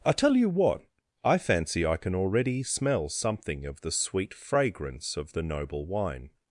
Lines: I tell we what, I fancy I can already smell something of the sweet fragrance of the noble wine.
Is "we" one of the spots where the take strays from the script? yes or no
yes